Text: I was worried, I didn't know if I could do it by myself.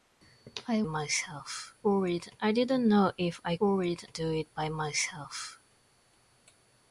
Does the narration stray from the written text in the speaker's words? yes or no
yes